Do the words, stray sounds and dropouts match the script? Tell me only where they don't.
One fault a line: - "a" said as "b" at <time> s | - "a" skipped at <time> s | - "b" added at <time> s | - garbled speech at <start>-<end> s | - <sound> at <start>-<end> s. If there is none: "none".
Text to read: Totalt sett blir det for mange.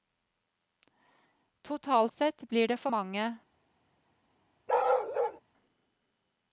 - bark at 4.7-5.4 s